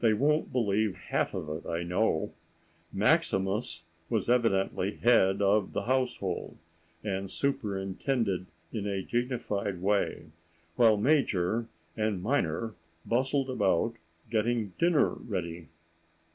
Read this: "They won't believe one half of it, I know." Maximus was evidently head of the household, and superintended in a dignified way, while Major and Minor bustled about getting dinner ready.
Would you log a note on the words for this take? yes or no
yes